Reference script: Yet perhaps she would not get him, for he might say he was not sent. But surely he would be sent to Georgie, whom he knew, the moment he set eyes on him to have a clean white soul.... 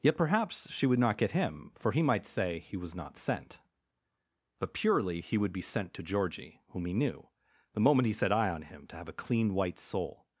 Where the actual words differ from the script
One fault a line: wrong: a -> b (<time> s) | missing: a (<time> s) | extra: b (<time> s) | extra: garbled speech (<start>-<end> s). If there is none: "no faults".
wrong: surely -> purely (4.7 s)
wrong: eyes -> eye (8.3 s)